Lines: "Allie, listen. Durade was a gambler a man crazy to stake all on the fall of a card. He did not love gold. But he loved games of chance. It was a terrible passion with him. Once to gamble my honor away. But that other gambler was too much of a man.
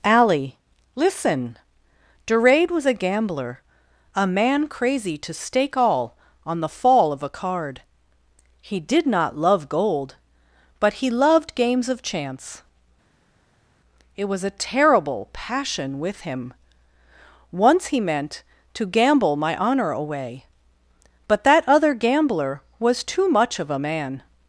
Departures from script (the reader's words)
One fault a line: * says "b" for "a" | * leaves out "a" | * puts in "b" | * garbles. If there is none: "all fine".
* puts in "he meant"